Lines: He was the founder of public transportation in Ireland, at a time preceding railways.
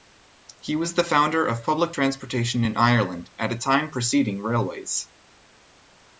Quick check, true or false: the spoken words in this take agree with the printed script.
true